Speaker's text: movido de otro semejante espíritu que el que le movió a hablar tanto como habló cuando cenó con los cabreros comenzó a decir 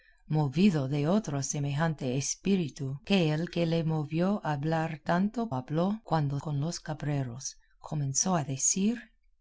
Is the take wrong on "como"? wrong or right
wrong